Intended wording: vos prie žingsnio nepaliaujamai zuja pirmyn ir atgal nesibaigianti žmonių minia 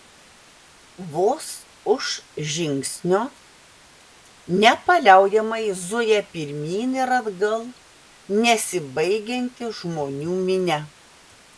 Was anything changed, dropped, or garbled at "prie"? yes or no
yes